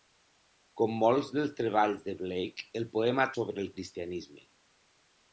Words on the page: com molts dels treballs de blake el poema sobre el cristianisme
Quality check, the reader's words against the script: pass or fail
pass